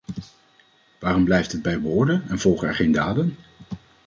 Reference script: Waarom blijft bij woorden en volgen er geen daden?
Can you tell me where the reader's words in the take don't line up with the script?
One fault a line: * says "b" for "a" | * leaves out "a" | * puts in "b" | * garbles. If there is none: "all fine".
* puts in "het"